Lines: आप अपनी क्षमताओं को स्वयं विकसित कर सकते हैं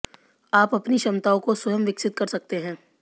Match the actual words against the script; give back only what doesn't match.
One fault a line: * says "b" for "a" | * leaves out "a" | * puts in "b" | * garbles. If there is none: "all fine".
all fine